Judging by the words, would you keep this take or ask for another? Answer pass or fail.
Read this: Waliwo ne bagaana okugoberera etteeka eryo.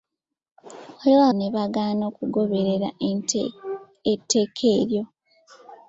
pass